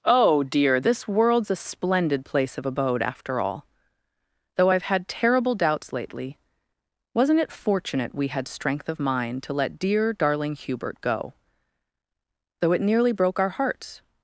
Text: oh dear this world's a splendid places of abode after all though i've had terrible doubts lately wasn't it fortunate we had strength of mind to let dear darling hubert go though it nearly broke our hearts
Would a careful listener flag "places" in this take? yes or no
yes